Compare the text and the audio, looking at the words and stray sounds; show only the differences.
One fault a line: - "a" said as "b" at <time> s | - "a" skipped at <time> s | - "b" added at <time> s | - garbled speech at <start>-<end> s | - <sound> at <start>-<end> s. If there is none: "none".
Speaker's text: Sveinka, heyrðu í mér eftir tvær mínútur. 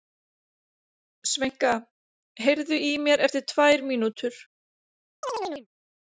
- chirp at 5.2-5.7 s